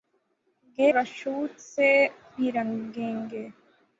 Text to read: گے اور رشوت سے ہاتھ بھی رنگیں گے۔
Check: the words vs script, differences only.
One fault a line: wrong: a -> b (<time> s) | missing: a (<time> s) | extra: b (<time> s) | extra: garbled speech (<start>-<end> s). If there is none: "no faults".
missing: اور (0.9 s)
missing: ہاتھ (1.9 s)